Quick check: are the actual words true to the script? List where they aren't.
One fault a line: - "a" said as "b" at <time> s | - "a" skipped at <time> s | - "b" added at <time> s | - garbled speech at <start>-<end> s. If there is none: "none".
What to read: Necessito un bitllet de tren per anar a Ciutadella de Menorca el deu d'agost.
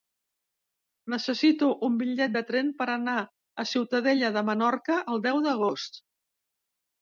none